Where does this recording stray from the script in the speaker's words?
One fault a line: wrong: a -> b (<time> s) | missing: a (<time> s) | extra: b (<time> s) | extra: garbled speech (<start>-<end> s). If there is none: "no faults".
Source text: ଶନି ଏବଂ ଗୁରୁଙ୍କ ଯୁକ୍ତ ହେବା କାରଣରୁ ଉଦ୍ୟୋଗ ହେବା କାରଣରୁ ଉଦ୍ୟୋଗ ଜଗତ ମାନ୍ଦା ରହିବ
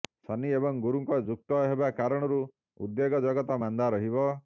missing: ହେବା କାରଣରୁ ଉଦ୍ୟୋଗ (3.2 s)